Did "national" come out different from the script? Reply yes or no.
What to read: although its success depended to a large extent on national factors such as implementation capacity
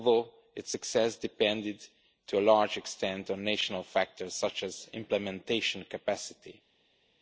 no